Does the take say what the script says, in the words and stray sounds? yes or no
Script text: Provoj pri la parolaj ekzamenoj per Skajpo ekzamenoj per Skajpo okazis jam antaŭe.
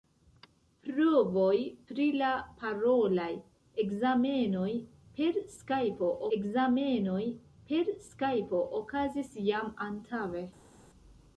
yes